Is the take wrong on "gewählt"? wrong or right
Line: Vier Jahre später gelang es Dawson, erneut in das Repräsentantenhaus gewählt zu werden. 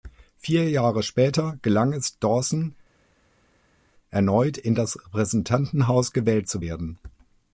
right